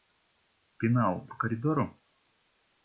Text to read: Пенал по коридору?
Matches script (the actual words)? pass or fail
pass